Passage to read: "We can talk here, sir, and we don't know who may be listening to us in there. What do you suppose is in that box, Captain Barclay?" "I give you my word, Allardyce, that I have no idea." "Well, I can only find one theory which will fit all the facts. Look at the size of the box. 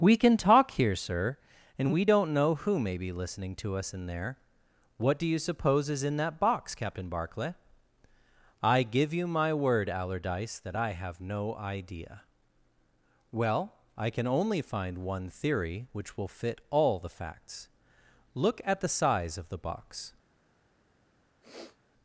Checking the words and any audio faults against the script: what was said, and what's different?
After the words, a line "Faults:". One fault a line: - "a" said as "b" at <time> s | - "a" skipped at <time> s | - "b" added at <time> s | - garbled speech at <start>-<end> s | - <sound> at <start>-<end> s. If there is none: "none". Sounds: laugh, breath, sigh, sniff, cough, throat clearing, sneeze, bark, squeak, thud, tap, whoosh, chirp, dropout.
"We can talk here, sir, and we don't know who may be listening to us in there. What do you suppose is in that box, Captain Barclay?" "I give you my word, Allardyce, that I have no idea." "Well, I can only find one theory which will fit all the facts. Look at the size of the box.
Faults:
- sniff at 21.4-21.8 s